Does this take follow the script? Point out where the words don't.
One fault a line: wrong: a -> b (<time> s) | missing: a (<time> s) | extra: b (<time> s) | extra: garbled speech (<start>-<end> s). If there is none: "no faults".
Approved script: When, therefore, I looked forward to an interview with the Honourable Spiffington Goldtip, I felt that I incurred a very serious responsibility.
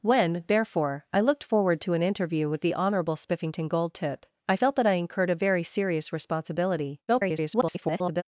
extra: garbled speech (7.1-8.2 s)